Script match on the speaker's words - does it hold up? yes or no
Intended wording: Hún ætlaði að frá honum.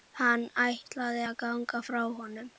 no